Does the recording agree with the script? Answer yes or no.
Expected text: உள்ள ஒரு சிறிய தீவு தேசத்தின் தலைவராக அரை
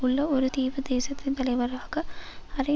no